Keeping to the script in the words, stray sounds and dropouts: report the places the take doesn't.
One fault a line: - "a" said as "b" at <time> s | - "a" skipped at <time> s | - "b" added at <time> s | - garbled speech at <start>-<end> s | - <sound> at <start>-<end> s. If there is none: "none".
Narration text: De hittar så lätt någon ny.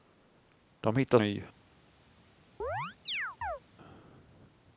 - "så lätt någon" skipped at 1.2 s
- chirp at 2.6-3.6 s